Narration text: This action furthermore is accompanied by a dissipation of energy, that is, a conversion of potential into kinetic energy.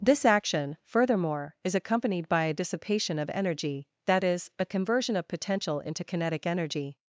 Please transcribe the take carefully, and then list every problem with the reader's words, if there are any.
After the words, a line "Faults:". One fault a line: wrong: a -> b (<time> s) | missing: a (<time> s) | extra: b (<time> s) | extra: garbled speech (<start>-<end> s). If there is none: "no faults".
This action furthermore is accompanied by a dissipation of energy, that is, a conversion of potential into kinetic energy.
Faults:
no faults